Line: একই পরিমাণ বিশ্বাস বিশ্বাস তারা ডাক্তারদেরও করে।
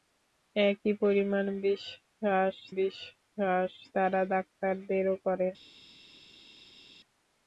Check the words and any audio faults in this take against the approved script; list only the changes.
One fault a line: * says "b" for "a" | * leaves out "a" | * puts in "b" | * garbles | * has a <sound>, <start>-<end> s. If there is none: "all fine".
all fine